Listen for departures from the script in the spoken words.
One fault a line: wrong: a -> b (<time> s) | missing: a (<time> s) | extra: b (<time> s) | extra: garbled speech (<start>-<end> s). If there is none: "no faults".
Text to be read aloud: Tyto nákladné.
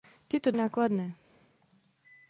no faults